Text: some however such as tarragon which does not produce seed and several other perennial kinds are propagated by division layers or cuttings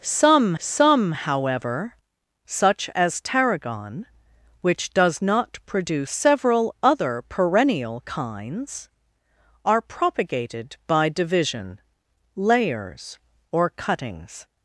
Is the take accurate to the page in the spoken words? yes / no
no